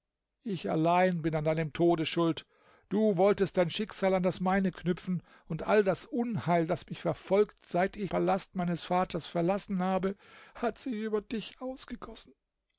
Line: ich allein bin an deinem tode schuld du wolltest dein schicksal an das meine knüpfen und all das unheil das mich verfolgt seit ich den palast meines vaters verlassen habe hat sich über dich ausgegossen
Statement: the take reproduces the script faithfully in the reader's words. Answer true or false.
false